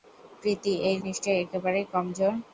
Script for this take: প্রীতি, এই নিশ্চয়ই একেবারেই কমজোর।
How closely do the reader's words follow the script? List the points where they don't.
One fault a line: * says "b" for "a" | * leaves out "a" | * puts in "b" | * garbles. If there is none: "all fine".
all fine